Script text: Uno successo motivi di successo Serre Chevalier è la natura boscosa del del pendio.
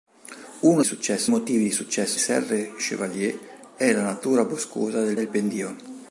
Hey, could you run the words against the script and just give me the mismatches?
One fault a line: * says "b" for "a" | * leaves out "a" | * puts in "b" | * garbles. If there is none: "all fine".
all fine